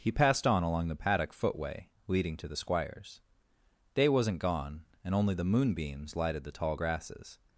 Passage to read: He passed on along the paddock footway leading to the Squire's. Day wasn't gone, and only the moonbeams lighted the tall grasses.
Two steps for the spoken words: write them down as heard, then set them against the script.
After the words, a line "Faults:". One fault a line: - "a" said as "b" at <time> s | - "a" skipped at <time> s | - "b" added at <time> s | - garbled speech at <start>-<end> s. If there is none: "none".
He passed on along the paddock footway leading to the Squire's. Day wasn't gone, and only the moonbeams lighted the tall grasses.
Faults:
none